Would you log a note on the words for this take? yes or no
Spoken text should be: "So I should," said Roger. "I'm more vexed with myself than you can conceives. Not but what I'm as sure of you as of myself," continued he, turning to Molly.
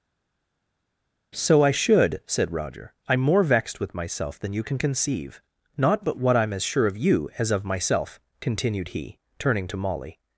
yes